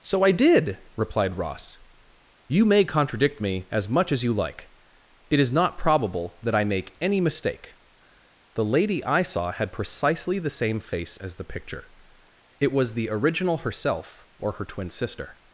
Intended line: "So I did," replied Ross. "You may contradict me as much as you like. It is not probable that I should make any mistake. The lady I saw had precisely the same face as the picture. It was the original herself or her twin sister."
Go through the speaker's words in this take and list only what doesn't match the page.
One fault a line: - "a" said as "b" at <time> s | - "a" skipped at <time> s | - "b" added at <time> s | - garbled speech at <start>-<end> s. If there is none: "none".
- "should" skipped at 6.6 s